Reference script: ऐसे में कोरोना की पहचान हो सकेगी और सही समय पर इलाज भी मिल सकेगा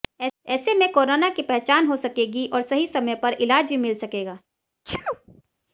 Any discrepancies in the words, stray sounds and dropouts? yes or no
yes